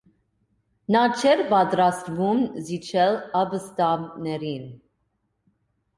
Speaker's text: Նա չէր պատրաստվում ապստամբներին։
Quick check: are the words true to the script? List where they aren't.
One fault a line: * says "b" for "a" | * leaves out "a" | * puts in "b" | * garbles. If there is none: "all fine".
* puts in "զիջել"